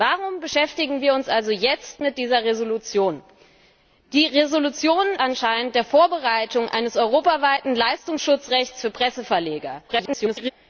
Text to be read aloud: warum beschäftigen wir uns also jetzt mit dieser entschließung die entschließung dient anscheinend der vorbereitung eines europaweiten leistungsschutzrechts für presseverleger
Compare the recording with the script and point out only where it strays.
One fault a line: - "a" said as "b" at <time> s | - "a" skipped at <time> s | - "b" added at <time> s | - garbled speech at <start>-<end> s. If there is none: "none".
- "dient" skipped at 5.0 s
- garbled speech at 9.9-10.5 s